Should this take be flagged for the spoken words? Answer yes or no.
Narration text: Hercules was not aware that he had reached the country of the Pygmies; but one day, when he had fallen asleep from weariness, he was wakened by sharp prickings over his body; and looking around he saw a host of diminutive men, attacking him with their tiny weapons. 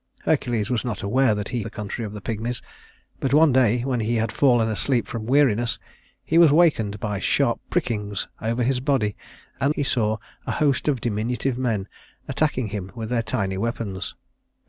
yes